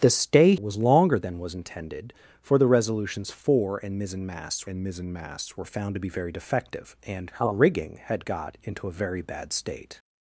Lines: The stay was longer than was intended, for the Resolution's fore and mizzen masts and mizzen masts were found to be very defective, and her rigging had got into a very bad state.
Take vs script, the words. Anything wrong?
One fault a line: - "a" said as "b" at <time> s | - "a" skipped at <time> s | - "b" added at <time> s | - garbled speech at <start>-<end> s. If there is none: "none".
none